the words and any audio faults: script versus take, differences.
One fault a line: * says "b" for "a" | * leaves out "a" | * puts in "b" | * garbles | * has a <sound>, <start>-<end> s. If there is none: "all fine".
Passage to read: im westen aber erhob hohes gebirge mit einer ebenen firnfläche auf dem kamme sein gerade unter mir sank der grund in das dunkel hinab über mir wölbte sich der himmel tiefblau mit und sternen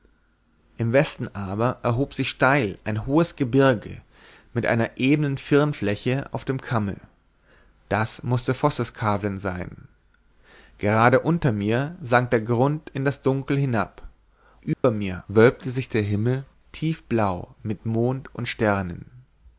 * puts in "sich steil ein"
* puts in "das mußte vosseskavlen"
* has a dropout, 14.7-14.8 s
* puts in "mond"